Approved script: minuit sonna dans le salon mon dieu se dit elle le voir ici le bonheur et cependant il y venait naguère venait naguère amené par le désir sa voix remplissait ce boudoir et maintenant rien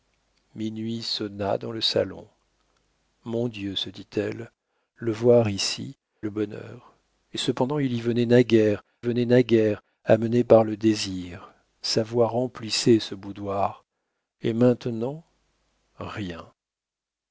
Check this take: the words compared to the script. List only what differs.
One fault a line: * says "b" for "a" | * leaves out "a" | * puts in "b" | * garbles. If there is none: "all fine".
all fine